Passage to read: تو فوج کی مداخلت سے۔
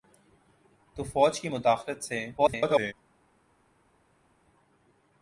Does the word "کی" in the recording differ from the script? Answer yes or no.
no